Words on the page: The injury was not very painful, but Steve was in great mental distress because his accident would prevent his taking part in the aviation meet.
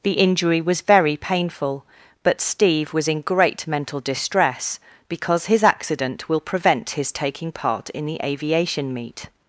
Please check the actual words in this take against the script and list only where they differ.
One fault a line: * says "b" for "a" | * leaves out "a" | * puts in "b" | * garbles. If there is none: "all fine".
* leaves out "not"
* says "will" for "would"